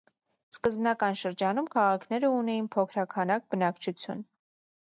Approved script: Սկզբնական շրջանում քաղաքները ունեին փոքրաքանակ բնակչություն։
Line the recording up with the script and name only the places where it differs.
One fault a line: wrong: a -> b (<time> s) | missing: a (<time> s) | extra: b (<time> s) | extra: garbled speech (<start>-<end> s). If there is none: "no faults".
no faults